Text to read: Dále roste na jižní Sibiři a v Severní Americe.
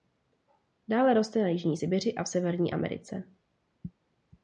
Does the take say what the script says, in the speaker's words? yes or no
yes